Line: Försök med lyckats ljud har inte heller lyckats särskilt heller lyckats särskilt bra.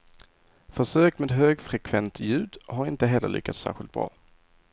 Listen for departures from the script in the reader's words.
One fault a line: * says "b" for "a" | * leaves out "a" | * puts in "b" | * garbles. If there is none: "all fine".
* says "högfrekvent" for "lyckats"
* leaves out "heller lyckats särskilt"